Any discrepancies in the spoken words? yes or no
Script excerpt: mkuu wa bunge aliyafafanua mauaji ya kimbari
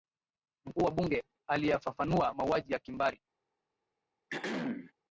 no